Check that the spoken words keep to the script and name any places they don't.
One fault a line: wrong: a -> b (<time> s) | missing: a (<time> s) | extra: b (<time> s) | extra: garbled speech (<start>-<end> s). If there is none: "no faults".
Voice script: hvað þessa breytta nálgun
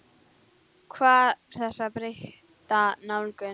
no faults